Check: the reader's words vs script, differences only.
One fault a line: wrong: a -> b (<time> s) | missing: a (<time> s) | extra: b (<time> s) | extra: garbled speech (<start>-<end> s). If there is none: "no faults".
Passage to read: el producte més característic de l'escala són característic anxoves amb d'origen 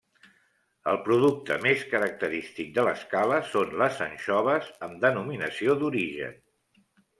wrong: característic -> les (3.8 s)
extra: denominació (5.1 s)